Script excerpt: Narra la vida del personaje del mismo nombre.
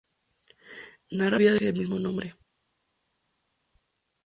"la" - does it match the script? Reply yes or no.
no